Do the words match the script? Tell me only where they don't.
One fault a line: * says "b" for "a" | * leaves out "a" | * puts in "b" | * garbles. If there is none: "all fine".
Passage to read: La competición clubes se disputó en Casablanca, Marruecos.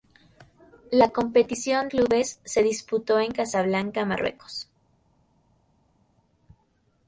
all fine